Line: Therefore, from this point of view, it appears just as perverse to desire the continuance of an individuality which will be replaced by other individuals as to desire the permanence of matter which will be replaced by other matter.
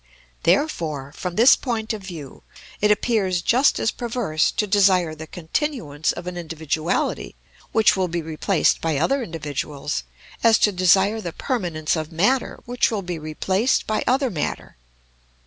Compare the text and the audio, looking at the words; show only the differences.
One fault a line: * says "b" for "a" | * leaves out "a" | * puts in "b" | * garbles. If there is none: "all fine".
all fine